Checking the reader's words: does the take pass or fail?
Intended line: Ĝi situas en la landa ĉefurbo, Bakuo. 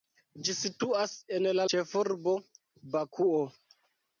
fail